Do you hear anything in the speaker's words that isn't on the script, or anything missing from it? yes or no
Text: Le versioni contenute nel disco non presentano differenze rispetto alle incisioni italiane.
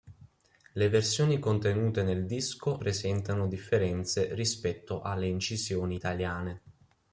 yes